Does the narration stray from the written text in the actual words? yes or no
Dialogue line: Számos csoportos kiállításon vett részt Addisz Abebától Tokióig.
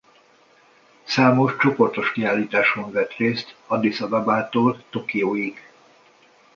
no